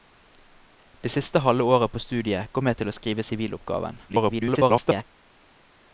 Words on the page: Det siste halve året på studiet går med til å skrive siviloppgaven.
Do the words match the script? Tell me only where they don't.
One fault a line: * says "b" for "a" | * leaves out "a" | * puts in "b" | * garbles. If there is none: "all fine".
* garbles